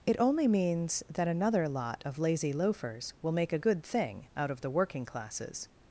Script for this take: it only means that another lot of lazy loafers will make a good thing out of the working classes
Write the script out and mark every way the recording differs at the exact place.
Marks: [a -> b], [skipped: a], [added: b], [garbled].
it only means that another lot of lazy loafers will make a good thing out of the working classes